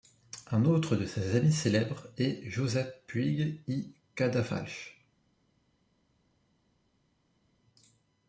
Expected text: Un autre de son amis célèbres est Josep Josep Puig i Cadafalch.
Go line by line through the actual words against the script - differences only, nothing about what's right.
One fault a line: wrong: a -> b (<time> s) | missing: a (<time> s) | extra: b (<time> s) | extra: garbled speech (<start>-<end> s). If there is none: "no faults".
wrong: son -> ses (1.1 s)
missing: Josep (3.0 s)